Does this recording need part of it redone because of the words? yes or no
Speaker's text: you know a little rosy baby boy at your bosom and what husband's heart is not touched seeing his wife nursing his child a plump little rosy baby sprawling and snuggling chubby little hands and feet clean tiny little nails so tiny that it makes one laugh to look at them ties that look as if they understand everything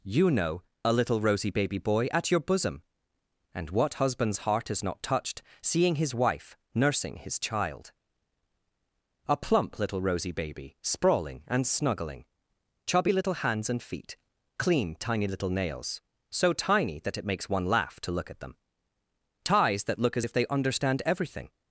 no